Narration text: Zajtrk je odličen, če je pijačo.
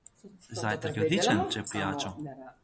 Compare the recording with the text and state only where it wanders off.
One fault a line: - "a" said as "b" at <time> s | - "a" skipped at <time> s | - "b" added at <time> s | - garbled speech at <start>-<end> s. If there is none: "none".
none